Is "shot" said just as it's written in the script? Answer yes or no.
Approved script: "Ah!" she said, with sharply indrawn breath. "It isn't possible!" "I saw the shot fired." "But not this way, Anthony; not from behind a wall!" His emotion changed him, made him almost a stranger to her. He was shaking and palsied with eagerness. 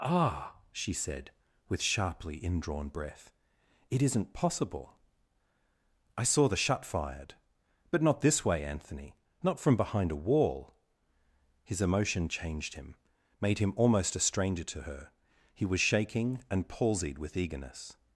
no